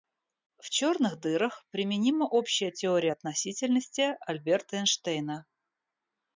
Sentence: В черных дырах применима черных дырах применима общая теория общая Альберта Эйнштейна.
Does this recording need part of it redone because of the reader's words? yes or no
yes